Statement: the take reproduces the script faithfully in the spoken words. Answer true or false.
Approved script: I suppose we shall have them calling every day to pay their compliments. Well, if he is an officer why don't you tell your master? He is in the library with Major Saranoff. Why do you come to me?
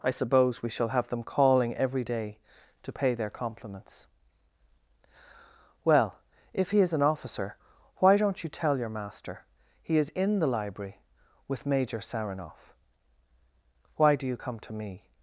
true